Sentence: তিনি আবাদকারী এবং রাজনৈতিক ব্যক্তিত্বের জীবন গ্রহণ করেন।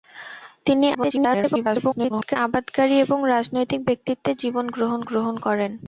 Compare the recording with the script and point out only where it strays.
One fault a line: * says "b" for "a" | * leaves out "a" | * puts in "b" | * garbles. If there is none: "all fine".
* garbles
* puts in "গ্রহণ"